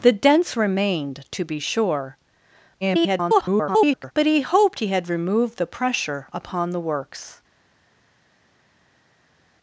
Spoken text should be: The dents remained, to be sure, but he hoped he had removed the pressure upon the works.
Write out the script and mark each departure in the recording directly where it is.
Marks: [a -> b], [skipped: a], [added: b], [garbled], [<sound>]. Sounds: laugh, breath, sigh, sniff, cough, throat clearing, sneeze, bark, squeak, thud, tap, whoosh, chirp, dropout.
The dents remained, to be sure, [garbled] but he hoped he had removed the pressure upon the works.